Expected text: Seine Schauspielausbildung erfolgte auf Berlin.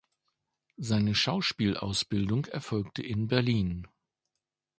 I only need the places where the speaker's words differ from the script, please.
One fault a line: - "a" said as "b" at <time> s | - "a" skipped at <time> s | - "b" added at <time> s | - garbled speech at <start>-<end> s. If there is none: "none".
- "auf" said as "in" at 3.0 s